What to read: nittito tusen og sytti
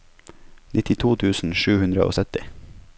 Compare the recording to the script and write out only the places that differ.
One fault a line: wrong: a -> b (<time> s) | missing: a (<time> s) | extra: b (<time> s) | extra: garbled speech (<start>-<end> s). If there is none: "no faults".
extra: sju hundre (1.6 s)